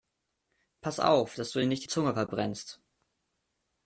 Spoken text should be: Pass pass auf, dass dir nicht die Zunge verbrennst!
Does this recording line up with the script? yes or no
no